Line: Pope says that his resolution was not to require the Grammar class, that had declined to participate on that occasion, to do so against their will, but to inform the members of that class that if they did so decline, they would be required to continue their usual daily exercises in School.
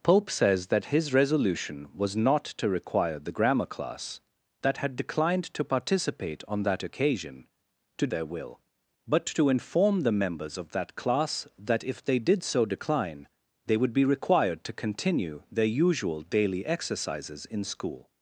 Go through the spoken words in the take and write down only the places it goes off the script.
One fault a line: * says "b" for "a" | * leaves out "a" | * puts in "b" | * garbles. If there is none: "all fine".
* leaves out "do so against"